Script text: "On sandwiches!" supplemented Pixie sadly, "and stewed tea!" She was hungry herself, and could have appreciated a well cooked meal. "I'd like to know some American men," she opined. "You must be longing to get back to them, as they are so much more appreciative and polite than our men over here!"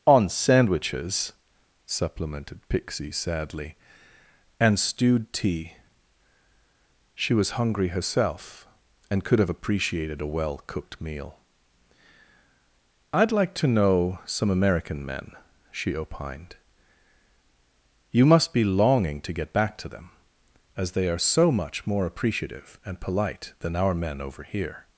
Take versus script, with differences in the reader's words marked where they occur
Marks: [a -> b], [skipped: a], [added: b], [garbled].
"On sandwiches!" supplemented Pixie sadly, "and stewed tea!" She was hungry herself, and could have appreciated a well cooked meal. "I'd like to know some American men," she opined. "You must be longing to get back to them, as they are so much more appreciative and polite than our men over here!"